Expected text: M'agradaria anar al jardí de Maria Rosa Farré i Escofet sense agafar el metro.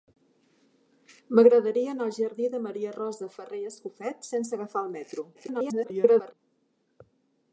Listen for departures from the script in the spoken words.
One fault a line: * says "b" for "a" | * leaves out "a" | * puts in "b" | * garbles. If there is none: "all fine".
* garbles